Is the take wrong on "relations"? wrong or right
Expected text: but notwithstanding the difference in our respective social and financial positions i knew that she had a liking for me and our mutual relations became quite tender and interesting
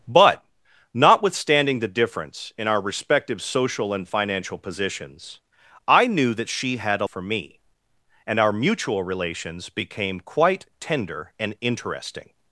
right